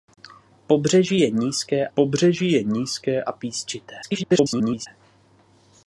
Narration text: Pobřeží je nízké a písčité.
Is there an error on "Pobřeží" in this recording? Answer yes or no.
no